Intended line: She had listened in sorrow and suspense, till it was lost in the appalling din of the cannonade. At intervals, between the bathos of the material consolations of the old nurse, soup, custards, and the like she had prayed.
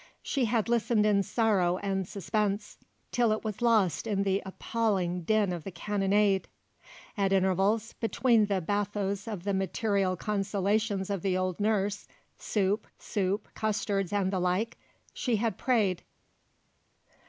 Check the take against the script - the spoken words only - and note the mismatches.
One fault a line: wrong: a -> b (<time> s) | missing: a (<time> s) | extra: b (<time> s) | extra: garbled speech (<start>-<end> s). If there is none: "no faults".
extra: soup (12.9 s)